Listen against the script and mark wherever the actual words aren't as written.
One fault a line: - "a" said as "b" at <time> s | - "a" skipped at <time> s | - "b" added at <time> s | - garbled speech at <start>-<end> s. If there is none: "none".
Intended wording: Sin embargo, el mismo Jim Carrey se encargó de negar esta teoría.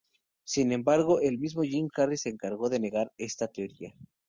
none